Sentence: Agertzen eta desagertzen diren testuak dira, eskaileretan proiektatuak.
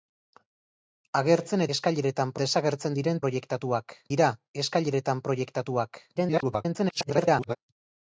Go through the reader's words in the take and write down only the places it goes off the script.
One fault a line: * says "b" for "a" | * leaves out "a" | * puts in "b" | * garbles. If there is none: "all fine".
* says "eskaileretan" for "eta"
* says "proiektatuak" for "testuak"
* garbles